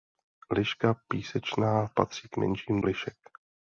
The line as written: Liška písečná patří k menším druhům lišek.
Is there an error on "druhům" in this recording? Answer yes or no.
yes